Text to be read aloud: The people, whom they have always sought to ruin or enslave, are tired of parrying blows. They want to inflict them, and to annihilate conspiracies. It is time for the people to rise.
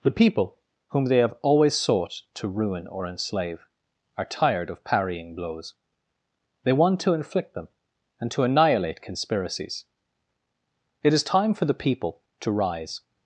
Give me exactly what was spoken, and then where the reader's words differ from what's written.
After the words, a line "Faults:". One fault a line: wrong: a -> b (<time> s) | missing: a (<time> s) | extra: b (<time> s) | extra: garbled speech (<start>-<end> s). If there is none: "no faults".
The people, whom they have always sought to ruin or enslave, are tired of parrying blows. They want to inflict them, and to annihilate conspiracies. It is time for the people to rise.
Faults:
no faults